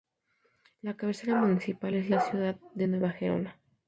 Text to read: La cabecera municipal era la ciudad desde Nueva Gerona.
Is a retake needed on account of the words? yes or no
yes